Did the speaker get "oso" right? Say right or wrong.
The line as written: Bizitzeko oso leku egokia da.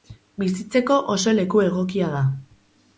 right